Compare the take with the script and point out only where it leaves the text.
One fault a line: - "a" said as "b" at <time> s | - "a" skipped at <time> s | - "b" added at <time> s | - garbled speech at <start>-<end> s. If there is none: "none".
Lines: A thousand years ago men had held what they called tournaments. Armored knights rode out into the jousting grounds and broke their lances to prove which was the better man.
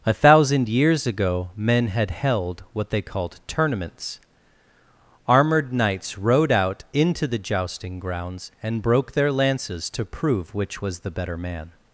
none